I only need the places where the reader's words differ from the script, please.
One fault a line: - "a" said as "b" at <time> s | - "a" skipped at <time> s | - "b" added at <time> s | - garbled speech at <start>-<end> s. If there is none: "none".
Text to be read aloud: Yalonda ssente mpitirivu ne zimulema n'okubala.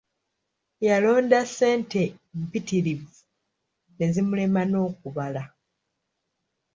none